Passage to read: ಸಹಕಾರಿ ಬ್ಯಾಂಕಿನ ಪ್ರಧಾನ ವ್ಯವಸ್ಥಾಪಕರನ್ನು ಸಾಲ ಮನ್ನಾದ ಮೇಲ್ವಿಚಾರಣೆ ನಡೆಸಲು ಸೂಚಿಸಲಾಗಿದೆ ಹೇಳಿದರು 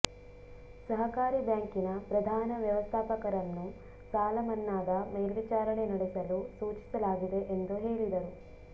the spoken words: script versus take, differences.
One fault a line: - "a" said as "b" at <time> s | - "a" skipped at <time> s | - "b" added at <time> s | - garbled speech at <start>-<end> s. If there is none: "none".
- "ಎಂದು" added at 7.5 s